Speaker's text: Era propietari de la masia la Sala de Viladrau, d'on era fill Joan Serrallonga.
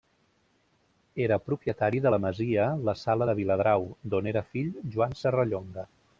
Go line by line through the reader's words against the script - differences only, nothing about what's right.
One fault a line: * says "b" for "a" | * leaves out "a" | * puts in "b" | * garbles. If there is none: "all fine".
all fine